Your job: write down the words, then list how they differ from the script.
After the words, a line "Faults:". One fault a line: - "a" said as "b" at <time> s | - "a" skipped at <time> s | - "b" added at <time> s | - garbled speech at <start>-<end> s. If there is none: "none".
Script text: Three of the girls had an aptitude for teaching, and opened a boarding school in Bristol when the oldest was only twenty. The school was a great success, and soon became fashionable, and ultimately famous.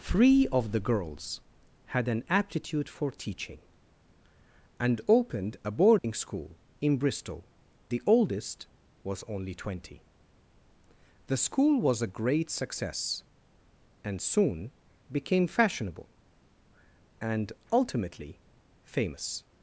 Three of the girls had an aptitude for teaching, and opened a boarding school in Bristol the oldest was only twenty. The school was a great success, and soon became fashionable, and ultimately famous.
Faults:
- "when" skipped at 7.5 s